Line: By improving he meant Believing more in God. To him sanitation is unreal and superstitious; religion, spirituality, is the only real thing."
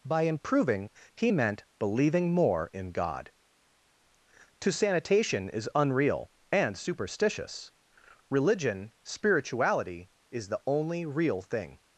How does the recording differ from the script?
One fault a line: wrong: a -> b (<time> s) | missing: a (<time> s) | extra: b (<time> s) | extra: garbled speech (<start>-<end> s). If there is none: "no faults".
missing: him (4.7 s)